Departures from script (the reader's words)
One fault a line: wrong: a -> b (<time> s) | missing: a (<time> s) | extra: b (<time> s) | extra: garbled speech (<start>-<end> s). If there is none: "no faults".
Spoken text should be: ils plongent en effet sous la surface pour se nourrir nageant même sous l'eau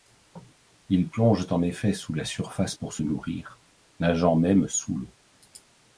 no faults